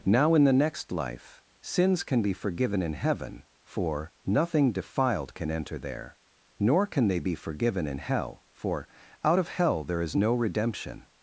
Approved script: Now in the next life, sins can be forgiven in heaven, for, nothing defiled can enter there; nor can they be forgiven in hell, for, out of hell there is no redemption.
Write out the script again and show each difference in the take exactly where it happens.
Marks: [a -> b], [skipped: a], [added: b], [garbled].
Now in the next life, sins can be forgiven in heaven, for, nothing defiled can enter there; nor can they be forgiven in hell, for, out of hell there is no redemption.